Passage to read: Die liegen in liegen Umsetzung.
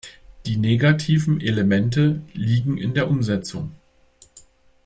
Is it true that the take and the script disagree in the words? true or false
true